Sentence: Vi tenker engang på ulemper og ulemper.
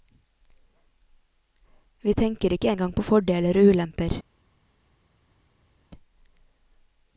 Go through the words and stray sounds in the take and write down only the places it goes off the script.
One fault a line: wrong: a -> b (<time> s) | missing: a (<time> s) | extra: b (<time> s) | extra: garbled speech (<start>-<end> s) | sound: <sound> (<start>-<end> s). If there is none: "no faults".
extra: ikke (2.5 s)
wrong: ulemper -> fordeler (3.0 s)